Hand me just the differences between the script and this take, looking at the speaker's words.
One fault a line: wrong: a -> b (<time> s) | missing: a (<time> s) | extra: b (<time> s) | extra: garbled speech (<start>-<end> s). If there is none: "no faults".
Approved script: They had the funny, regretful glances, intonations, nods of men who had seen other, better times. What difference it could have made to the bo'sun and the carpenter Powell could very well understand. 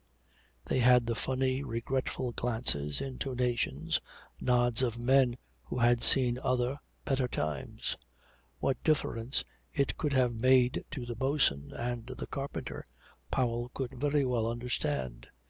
no faults